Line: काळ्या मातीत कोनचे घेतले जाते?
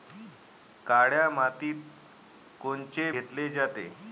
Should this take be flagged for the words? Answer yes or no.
no